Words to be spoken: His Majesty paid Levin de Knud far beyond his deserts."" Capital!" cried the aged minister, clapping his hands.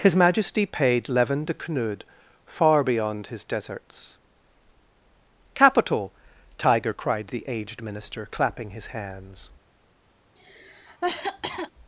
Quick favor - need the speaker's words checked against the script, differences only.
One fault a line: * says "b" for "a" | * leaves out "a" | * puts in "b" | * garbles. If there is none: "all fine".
* puts in "tiger"